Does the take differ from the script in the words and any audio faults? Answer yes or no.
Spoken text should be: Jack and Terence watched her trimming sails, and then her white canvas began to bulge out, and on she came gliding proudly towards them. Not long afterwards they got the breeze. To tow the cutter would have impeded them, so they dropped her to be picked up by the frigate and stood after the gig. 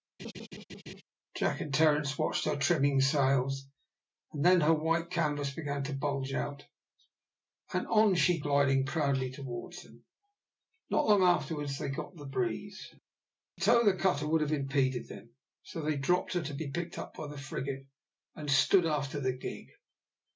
yes